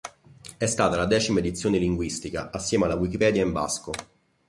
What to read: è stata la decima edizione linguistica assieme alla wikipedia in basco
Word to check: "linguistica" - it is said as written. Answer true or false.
true